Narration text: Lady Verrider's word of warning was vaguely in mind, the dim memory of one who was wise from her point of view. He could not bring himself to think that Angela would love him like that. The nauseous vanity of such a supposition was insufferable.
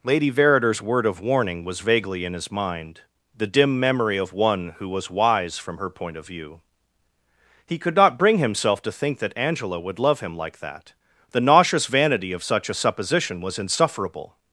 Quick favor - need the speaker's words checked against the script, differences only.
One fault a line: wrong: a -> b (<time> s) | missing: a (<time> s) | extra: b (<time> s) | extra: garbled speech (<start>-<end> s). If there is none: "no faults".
extra: his (2.3 s)